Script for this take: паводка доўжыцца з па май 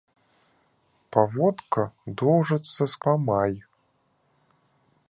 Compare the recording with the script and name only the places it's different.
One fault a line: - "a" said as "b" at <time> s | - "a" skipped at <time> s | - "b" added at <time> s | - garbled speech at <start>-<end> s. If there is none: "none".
none